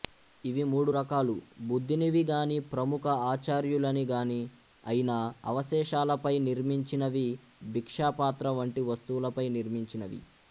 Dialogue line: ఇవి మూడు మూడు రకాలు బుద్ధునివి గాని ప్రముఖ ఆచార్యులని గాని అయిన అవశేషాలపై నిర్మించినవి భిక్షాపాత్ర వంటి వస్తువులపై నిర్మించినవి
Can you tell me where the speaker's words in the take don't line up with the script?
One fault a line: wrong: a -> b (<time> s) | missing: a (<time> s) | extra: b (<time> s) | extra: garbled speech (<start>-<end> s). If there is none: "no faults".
missing: మూడు (0.9 s)